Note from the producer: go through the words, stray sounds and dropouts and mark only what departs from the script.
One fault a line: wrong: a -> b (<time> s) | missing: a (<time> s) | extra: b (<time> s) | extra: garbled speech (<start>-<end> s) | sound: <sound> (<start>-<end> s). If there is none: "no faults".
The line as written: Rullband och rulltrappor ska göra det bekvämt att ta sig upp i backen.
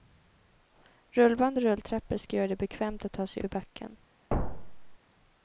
missing: upp (3.4 s)
sound: thud (4.3-5.0 s)